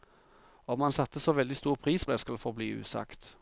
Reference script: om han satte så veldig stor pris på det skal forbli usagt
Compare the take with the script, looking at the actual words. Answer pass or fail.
fail